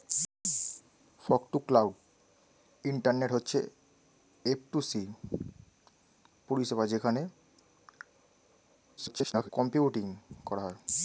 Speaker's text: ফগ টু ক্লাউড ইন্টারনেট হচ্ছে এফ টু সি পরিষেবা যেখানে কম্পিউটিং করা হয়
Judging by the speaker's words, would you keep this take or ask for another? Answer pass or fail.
fail